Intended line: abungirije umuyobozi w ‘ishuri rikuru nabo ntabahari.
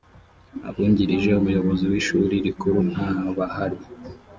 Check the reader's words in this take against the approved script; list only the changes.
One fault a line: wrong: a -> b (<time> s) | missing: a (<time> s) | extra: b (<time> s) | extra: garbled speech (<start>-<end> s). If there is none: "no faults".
missing: nabo (2.8 s)